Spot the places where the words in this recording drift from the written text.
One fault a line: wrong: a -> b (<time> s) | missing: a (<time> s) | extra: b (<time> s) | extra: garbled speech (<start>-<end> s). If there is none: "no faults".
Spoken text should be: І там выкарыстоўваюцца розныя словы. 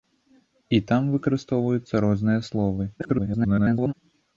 extra: garbled speech (3.0-3.9 s)